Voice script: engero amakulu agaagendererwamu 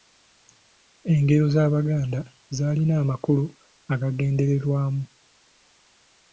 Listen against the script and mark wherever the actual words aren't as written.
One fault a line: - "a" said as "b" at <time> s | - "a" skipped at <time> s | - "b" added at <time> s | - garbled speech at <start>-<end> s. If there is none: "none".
- "z'abaganda zaalina" added at 1.5 s